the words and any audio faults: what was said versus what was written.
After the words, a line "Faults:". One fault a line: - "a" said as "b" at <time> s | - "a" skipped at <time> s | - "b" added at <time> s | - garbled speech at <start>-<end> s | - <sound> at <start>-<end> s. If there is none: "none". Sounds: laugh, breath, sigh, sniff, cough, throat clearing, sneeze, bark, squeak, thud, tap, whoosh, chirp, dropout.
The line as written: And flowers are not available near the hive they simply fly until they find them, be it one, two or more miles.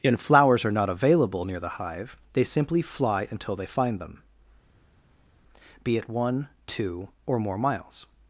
And flowers are not available near the hive they simply fly until they find them, be it one, two or more miles.
Faults:
none